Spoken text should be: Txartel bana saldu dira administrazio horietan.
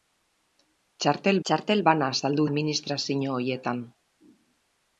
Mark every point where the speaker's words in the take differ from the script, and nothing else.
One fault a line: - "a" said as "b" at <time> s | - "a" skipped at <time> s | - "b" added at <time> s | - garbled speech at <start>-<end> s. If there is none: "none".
- "txartel" added at 1.5 s
- "dira" skipped at 2.5 s